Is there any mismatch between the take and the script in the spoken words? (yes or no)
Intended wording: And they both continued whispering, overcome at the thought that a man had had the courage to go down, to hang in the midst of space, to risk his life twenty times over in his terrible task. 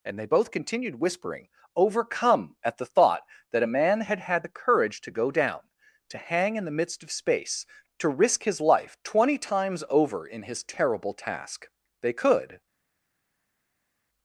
yes